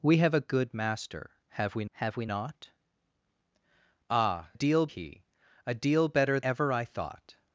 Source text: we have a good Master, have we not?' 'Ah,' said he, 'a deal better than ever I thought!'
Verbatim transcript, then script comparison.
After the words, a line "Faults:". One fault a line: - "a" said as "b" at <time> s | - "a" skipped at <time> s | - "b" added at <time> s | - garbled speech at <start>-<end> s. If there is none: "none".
we have a good Master, have we have we not?' 'Ah,' deal he, 'a deal better ever I thought!'
Faults:
- "have we" added at 1.9 s
- "said" said as "deal" at 4.5 s
- "than" skipped at 6.4 s